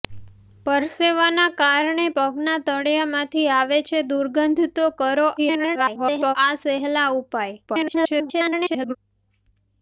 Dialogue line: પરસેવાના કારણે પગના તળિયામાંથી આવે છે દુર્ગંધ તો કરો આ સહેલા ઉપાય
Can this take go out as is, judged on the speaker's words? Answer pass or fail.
fail